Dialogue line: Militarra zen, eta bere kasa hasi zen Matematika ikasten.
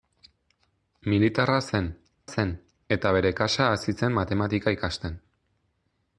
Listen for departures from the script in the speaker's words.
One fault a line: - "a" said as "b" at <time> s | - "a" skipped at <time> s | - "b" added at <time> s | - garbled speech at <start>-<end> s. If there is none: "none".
- "zen" added at 2.3 s